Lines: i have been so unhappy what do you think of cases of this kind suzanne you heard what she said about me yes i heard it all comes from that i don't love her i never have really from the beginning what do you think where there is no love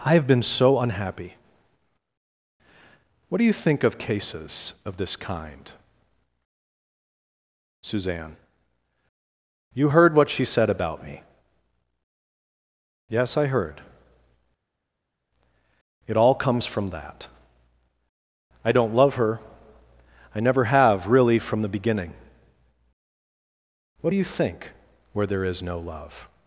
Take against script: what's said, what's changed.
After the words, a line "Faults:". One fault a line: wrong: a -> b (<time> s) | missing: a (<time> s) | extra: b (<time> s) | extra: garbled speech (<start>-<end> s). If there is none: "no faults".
i have been so unhappy what do you think of cases of this kind suzanne you heard what she said about me yes i heard it all comes from that i don't love her i never have really from the beginning what do you think where there is no love
Faults:
no faults